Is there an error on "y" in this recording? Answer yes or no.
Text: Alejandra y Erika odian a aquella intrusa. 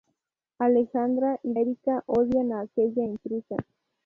no